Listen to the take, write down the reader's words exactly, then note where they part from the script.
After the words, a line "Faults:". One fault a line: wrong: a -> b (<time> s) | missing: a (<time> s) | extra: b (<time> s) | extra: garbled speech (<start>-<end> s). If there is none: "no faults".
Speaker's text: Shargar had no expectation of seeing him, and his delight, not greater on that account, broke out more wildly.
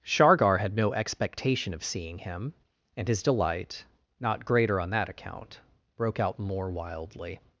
Shargar had no expectation of seeing him, and his delight, not greater on that account, broke out more wildly.
Faults:
no faults